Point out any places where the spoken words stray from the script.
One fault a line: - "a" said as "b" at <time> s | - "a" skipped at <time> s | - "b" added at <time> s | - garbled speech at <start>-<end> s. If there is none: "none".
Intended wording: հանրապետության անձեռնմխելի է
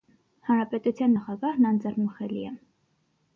- "նախագահն" added at 1.1 s